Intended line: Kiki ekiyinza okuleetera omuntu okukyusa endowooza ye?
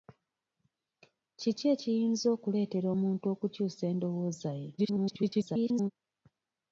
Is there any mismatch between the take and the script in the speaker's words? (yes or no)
yes